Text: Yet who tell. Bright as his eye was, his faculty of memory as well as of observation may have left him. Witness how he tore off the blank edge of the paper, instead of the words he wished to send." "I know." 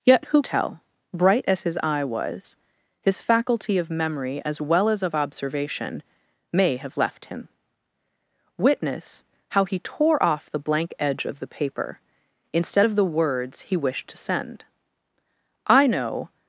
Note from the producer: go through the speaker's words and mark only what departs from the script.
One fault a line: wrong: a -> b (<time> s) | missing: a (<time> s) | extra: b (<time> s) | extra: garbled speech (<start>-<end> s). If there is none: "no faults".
no faults